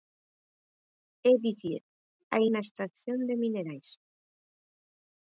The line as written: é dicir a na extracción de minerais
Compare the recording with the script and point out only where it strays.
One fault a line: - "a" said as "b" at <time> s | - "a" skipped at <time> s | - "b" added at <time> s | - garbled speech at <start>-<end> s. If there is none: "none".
none